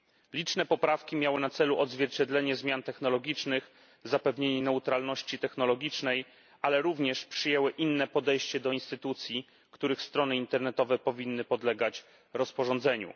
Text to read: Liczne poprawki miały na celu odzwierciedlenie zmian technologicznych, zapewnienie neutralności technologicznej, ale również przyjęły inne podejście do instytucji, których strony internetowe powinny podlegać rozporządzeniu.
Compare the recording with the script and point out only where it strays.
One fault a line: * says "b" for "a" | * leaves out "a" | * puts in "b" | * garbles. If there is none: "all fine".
all fine